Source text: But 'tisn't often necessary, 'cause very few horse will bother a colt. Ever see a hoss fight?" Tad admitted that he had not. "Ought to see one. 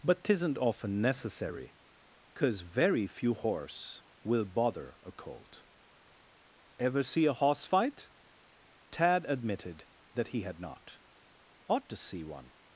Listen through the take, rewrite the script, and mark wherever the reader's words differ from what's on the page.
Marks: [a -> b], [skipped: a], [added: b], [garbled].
But 'tisn't often necessary, 'cause very few horse will bother a colt. Ever see a hoss fight?" Tad admitted that he had not. "Ought to see one.